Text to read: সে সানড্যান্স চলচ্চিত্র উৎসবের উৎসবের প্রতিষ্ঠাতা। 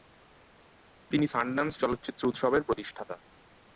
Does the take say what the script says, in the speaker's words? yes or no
no